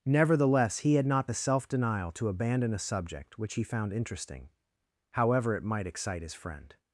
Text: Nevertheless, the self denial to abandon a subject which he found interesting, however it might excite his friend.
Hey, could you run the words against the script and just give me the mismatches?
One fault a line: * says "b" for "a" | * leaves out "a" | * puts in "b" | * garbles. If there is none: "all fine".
* puts in "he had not"